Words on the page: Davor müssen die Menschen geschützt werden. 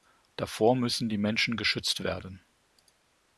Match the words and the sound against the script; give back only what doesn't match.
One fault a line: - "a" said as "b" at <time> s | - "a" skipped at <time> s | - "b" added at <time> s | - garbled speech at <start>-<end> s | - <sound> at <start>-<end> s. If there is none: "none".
none